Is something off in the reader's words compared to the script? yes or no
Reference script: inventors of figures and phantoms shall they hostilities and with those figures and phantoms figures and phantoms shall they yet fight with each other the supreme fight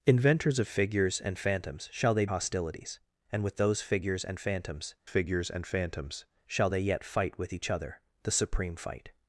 no